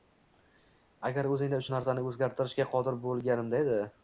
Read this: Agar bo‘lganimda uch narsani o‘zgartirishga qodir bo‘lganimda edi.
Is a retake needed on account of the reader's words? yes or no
yes